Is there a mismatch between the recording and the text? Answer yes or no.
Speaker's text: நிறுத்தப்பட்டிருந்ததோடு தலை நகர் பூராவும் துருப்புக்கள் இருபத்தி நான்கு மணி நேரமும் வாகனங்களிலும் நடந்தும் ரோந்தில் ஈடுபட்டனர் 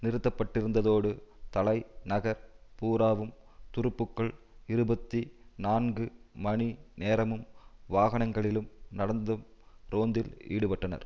no